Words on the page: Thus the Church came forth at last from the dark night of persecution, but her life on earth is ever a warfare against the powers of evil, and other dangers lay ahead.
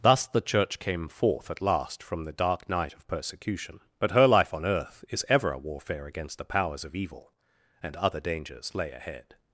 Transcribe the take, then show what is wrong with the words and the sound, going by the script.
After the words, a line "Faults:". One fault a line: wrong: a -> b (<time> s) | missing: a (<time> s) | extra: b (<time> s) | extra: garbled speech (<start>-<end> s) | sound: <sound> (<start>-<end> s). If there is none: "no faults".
Thus the Church came forth at last from the dark night of persecution, but her life on earth is ever a warfare against the powers of evil, and other dangers lay ahead.
Faults:
no faults